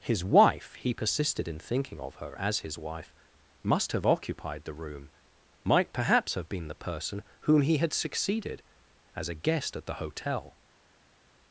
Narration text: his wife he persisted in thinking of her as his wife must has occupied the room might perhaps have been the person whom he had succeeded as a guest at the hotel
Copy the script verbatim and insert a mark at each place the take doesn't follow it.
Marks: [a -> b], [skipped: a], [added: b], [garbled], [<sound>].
his wife he persisted in thinking of her as his wife must [has -> have] occupied the room might perhaps have been the person whom he had succeeded as a guest at the hotel